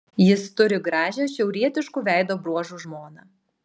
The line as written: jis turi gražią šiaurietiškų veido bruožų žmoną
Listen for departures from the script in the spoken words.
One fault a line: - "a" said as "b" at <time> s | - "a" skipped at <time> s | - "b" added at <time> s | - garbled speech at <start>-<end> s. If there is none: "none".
none